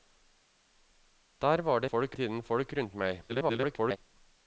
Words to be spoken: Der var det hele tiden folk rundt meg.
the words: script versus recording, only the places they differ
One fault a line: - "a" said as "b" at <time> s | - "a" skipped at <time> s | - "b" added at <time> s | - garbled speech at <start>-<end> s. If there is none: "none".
- "hele" said as "folk" at 1.9 s
- garbled speech at 3.3-4.0 s